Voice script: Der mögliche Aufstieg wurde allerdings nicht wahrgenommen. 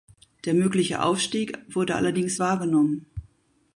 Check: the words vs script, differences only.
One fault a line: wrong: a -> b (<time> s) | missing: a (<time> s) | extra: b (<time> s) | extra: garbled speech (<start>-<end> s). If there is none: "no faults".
missing: nicht (2.4 s)